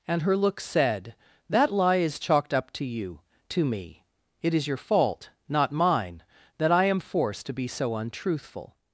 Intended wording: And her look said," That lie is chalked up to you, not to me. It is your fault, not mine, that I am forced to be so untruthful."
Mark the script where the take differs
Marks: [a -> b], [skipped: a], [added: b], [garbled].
And her look said," That lie is chalked up to you, [skipped: not] to me. It is your fault, not mine, that I am forced to be so untruthful."